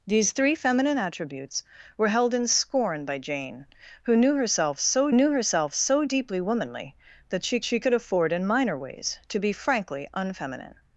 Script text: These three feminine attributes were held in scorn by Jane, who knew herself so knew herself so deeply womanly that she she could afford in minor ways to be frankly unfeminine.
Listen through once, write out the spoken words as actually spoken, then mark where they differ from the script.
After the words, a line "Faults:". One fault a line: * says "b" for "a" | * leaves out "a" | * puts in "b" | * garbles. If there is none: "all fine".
These three feminine attributes were held in scorn by Jane, who knew herself so knew herself so deeply womanly that she she could afford in minor ways to be frankly unfeminine.
Faults:
all fine